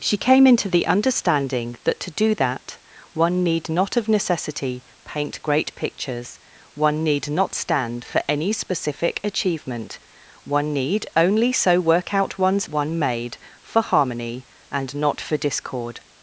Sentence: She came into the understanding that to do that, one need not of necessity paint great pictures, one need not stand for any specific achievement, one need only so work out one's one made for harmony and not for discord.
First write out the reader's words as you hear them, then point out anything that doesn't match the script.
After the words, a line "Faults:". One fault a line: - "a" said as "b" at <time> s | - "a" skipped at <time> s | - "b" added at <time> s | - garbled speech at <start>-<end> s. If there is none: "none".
She came into the understanding that to do that, one need not of necessity paint great pictures, one need not stand for any specific achievement, one need only so work out one's one made for harmony and not for discord.
Faults:
none